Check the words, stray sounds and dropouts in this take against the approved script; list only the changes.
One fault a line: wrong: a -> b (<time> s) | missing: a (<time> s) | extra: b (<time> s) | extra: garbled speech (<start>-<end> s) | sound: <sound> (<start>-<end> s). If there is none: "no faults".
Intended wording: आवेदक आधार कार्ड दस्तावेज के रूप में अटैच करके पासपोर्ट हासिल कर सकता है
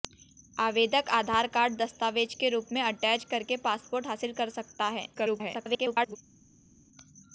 extra: garbled speech (5.1-6.2 s)